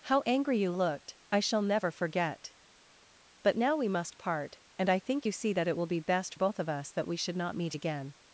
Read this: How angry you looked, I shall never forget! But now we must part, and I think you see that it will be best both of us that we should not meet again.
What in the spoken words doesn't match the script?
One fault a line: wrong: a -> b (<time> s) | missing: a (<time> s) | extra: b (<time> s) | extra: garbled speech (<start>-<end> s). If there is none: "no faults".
no faults